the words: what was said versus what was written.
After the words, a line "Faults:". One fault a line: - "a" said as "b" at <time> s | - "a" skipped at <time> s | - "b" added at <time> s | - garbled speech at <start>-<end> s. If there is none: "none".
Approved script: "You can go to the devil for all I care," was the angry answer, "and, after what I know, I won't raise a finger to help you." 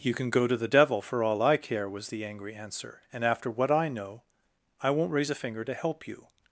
"You can go to the devil for all I care," was the angry answer, "and, after what I know, I won't raise a finger to help you."
Faults:
none